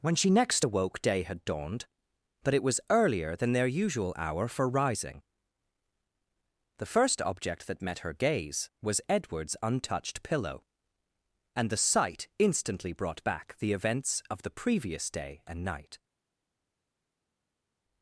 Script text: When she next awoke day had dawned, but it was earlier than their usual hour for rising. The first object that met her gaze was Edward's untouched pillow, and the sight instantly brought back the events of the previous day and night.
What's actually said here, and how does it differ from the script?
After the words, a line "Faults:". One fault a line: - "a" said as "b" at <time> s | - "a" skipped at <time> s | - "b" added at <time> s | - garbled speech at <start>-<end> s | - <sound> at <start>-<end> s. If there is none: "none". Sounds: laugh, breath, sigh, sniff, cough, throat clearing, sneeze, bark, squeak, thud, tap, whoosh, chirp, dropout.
When she next awoke day had dawned, but it was earlier than their usual hour for rising. The first object that met her gaze was Edward's untouched pillow, and the sight instantly brought back the events of the previous day and night.
Faults:
none